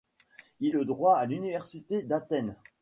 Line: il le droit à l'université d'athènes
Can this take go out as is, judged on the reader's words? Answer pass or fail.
pass